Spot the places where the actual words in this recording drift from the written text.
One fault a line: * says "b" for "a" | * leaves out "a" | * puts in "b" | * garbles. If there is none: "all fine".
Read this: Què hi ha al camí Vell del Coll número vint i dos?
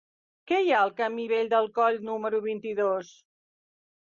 all fine